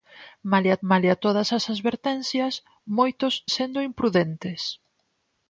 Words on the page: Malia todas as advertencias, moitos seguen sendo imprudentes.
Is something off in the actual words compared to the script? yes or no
yes